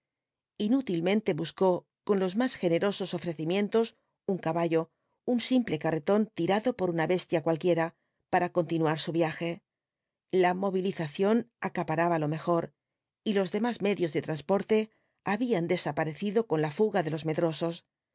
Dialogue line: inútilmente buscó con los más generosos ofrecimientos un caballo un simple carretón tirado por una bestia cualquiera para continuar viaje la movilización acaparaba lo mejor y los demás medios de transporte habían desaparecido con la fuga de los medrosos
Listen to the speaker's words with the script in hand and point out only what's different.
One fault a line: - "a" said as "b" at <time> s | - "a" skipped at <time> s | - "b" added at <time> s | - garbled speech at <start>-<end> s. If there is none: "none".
- "su" added at 9.0 s